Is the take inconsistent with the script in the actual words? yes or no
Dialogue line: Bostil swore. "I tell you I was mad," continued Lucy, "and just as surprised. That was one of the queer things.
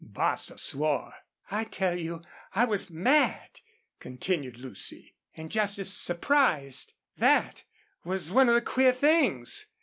no